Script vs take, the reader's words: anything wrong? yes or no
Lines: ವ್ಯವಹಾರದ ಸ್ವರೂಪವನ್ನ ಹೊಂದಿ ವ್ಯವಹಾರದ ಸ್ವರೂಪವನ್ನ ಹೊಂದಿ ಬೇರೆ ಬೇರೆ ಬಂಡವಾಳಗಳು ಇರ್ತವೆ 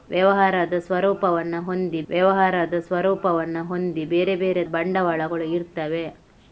no